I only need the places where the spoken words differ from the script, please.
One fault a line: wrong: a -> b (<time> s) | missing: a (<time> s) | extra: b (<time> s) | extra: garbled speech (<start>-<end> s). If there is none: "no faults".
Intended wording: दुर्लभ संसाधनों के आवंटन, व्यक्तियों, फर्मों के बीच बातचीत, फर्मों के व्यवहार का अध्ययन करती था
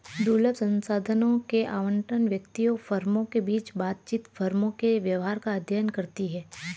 wrong: था -> है (6.3 s)